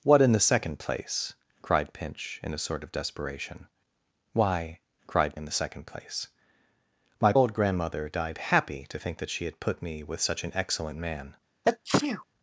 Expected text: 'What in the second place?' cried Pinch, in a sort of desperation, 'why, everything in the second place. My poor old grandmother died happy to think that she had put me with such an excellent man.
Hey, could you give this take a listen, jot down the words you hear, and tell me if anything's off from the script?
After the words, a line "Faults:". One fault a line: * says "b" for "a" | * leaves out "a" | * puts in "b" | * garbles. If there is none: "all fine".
'What in the second place?' cried Pinch, in a sort of desperation, 'why, cried in the second place. My old grandmother died happy to think that she had put me with such an excellent man.
Faults:
* says "cried" for "everything"
* leaves out "poor"